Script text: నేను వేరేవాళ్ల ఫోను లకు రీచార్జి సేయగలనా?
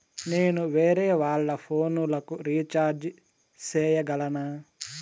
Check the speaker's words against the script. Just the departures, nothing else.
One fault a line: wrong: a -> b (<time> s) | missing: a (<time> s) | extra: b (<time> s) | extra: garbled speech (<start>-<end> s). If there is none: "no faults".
no faults